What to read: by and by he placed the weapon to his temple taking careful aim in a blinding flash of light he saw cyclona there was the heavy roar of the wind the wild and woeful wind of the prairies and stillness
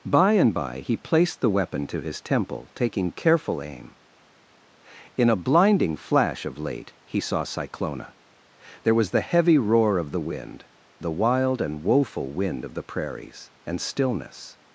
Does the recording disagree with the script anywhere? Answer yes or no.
yes